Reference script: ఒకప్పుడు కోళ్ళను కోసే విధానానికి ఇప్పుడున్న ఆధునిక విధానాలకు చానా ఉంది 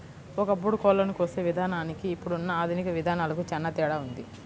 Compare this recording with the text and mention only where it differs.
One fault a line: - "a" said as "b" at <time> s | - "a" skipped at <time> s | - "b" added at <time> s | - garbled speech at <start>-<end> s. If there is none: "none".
- "తేడా" added at 3.8 s